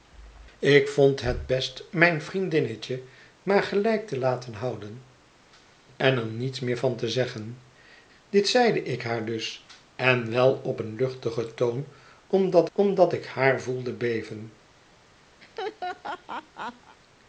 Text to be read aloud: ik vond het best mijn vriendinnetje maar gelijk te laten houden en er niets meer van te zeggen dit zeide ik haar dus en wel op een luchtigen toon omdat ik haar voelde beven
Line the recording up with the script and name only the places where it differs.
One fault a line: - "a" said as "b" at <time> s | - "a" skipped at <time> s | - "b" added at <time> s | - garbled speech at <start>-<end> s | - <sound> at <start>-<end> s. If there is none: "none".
- "omdat" added at 12.7 s
- laugh at 15.4-17.0 s